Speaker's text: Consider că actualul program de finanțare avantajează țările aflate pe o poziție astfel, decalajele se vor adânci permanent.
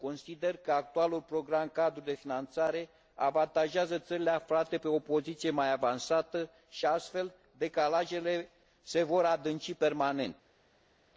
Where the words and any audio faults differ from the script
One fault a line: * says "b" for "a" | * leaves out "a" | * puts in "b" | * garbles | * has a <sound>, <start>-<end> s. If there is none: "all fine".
* puts in "cadru"
* puts in "mai avansată și"